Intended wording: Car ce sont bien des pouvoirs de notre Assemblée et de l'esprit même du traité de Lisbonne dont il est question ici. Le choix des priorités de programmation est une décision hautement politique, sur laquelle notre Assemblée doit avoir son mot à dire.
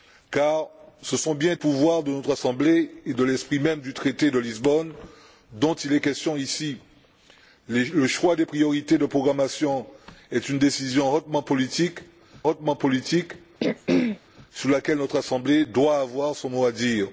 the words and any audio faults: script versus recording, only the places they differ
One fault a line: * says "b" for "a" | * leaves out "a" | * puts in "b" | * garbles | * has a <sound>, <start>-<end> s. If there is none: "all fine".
* leaves out "des"
* puts in "hautement politique"
* has a throat clearing, 13.6-14.2 s